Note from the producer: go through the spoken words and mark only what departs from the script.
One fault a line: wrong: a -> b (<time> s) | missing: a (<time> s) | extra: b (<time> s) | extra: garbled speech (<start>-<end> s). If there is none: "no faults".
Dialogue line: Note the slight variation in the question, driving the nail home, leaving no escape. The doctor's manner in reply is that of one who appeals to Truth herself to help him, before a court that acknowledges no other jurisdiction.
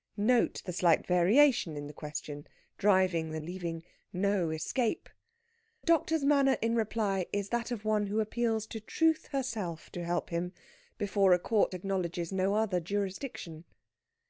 missing: nail home (3.4 s)
missing: The (5.1 s)
missing: that (11.7 s)